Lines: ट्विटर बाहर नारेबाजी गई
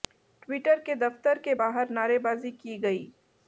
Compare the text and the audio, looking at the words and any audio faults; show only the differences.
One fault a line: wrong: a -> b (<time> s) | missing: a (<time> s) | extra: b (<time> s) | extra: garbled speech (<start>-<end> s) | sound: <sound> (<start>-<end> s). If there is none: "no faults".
extra: के दफ्तर के (0.8 s)
extra: की (2.5 s)